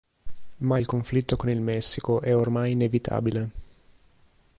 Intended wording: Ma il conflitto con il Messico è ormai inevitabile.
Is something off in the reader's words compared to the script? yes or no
no